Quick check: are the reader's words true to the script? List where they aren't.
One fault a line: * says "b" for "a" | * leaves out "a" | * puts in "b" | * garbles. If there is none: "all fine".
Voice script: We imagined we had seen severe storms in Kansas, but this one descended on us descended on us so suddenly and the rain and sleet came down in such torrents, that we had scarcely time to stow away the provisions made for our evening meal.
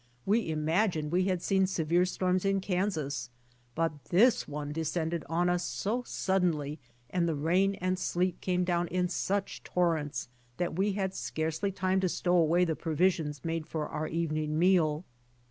* leaves out "descended on us"